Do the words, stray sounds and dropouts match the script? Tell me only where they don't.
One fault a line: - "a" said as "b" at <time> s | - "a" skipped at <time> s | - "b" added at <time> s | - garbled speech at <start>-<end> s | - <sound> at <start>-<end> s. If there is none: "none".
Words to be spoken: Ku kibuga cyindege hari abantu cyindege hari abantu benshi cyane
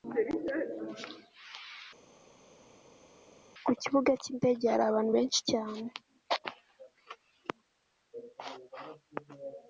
- "cyindege hari abantu" skipped at 5.1 s